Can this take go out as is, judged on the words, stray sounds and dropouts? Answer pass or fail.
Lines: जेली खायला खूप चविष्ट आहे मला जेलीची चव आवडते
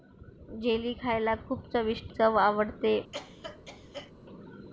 fail